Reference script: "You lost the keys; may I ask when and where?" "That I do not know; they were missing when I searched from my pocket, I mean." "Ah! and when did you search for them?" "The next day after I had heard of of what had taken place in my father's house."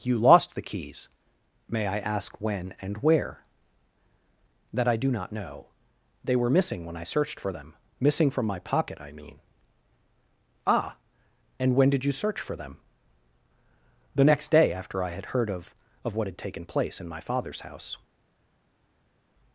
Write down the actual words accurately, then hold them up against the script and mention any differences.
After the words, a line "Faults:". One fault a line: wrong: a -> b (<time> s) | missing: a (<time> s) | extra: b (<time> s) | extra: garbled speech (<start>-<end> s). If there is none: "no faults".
"You lost the keys; may I ask when and where?" "That I do not know; they were missing when I searched for them; missing from my pocket, I mean." "Ah! and when did you search for them?" "The next day after I had heard of of what had taken place in my father's house."
Faults:
extra: for them missing (7.4 s)